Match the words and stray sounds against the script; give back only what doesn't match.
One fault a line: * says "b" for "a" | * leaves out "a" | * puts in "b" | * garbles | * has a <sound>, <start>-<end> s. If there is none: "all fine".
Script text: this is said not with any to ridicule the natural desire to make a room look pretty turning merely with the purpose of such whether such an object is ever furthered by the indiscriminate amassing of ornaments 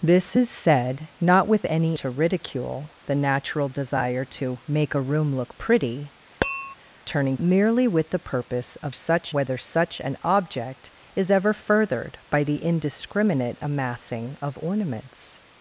* has a tap, 6.4-6.8 s